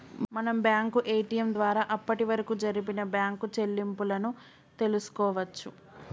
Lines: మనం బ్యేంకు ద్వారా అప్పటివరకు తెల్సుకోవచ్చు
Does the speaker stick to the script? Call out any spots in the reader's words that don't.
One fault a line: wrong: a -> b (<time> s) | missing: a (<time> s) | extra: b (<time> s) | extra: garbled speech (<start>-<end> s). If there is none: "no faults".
extra: ఏ.టి.యం (1.1 s)
extra: జరిపిన బ్యేంకు చెల్లింపులను (2.6 s)